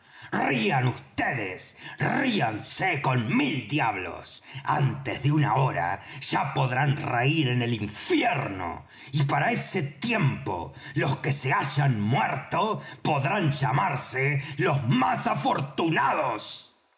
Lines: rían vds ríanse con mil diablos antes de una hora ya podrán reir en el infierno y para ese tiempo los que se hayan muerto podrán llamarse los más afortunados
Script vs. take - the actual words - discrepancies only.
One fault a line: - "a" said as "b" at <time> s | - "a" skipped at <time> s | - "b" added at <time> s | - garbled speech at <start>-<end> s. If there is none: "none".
none